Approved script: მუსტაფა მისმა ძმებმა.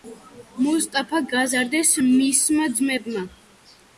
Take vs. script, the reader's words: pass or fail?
fail